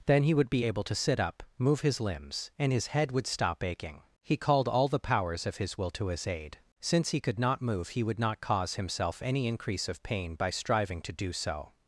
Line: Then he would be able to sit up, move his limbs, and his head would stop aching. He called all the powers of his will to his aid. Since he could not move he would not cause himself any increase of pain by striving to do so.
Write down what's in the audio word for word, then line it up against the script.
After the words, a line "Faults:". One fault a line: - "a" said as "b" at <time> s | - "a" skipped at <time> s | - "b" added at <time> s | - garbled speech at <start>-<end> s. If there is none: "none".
Then he would be able to sit up, move his limbs, and his head would stop aching. He called all the powers of his will to his aid. Since he could not move he would not cause himself any increase of pain by striving to do so.
Faults:
none